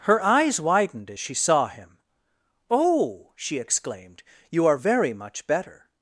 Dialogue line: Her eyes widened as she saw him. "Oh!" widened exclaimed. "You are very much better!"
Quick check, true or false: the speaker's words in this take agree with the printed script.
false